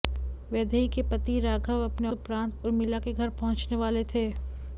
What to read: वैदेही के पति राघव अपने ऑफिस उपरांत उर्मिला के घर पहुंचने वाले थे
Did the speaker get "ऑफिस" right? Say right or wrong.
wrong